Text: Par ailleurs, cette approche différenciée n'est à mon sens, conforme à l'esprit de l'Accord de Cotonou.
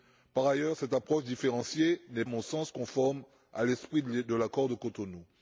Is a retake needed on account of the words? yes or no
no